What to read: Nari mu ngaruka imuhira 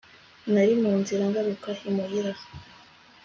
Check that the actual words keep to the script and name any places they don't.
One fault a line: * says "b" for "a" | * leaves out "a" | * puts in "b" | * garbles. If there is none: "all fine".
* puts in "nzira"